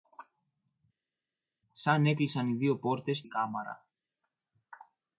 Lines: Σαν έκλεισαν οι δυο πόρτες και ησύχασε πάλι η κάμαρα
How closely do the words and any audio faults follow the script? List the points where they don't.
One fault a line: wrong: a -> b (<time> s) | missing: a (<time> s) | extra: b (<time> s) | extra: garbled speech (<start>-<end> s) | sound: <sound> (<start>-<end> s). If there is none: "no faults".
missing: και ησύχασε πάλι (3.2 s)